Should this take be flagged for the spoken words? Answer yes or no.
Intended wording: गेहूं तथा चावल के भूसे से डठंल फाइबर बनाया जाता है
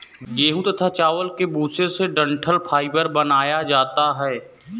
no